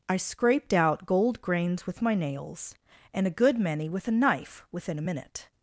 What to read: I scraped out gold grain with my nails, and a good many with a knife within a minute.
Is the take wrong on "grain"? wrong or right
wrong